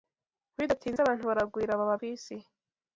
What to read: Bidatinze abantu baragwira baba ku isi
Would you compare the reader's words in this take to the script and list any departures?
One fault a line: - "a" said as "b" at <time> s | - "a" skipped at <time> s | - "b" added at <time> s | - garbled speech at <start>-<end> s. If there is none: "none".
none